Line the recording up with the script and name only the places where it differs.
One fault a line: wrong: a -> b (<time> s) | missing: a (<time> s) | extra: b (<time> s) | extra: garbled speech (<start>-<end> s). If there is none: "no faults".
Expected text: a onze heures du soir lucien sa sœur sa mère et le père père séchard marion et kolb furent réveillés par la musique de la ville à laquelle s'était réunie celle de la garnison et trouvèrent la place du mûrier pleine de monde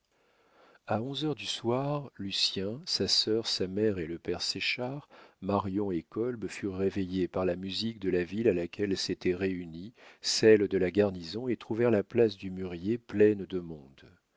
missing: père (4.4 s)